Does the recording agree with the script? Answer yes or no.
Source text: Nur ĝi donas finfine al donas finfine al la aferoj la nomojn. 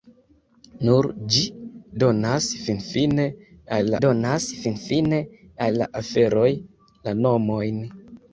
yes